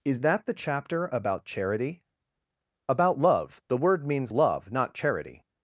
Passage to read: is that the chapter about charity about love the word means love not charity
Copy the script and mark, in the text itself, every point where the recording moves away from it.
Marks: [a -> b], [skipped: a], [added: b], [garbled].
is that the chapter about charity about love the word means love not charity